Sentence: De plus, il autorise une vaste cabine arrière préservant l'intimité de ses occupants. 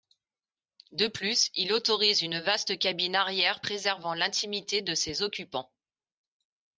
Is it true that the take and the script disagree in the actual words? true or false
false